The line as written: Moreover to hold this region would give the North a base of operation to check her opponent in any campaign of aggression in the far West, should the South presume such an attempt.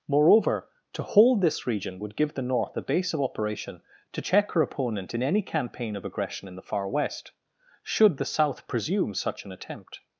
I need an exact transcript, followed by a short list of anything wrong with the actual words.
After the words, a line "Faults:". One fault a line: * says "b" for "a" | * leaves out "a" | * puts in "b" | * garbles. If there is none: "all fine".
Moreover to hold this region would give the North a base of operation to check her opponent in any campaign of aggression in the far West, should the South presume such an attempt.
Faults:
all fine